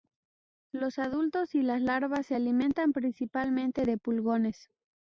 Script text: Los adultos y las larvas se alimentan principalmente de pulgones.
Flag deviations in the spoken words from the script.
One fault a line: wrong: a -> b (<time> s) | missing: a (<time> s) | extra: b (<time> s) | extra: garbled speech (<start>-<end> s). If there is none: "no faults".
no faults